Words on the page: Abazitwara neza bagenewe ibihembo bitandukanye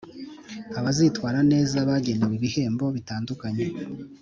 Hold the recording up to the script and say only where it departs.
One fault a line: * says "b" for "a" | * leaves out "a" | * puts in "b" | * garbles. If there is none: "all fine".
all fine